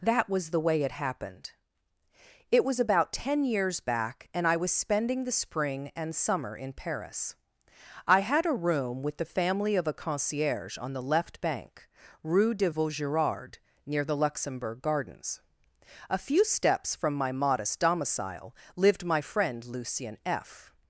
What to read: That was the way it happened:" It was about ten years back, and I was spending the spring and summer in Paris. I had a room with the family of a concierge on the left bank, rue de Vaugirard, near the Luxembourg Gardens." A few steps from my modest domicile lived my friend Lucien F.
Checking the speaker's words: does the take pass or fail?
pass